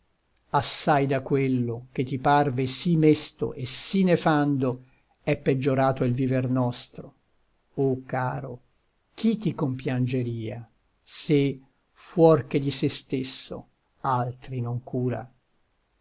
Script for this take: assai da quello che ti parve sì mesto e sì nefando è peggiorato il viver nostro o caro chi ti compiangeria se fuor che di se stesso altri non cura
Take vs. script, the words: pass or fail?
pass